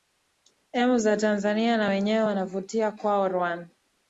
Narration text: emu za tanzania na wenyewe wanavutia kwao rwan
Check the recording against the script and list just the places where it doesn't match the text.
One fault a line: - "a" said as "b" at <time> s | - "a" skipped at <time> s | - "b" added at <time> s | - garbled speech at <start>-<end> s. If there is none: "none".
none